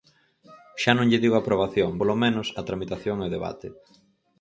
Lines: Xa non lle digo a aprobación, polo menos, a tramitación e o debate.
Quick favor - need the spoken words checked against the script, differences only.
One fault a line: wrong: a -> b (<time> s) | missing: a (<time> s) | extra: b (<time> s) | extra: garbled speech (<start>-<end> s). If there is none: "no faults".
no faults